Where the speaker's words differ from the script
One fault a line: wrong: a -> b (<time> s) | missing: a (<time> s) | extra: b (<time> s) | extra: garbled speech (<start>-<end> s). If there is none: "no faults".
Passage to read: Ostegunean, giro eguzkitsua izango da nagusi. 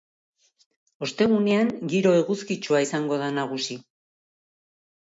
no faults